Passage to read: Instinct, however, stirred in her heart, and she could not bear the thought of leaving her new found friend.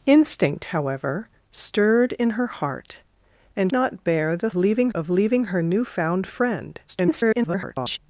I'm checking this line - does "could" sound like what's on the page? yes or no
no